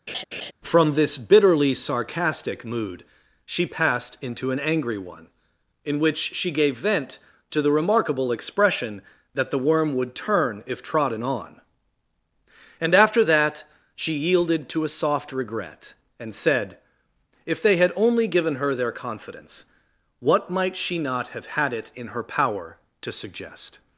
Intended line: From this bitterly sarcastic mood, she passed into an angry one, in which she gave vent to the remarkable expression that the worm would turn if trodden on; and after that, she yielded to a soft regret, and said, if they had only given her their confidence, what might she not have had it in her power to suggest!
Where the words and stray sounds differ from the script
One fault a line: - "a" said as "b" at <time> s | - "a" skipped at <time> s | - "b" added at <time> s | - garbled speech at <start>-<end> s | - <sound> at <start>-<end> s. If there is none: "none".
- laugh at 0.1-0.5 s